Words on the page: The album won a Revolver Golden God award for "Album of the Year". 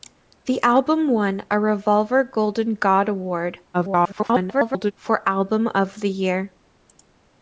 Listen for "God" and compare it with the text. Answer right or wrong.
right